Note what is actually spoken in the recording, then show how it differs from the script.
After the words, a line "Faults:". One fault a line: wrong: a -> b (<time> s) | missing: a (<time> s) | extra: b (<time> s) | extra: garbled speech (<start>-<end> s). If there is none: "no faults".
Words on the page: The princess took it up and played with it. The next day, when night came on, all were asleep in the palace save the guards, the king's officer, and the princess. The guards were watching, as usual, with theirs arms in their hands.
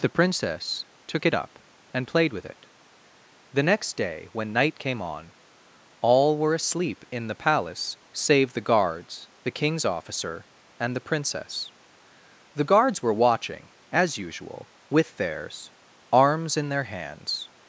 The princess took it up and played with it. The next day, when night came on, all were asleep in the palace save the guards, the king's officer, and the princess. The guards were watching, as usual, with theirs arms in their hands.
Faults:
no faults